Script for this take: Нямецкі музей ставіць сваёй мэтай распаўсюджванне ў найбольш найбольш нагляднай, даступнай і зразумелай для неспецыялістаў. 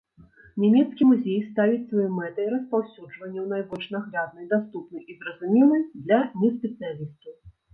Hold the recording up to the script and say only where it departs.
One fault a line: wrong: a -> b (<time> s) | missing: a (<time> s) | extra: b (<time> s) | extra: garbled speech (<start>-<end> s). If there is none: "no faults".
missing: найбольш (3.9 s)